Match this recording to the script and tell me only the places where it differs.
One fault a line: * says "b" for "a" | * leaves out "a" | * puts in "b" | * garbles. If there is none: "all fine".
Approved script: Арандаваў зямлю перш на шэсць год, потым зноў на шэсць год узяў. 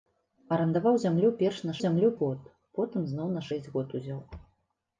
* says "зямлю" for "шэсць"